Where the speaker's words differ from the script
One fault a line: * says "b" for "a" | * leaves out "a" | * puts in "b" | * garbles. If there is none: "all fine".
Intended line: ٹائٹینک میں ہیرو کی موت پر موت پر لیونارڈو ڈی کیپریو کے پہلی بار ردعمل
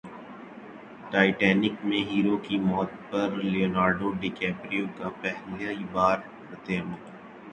* leaves out "موت پر"
* says "کا" for "کے"